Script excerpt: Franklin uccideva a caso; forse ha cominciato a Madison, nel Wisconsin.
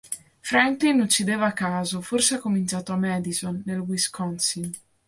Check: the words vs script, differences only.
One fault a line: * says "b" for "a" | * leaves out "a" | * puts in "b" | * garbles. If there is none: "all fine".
all fine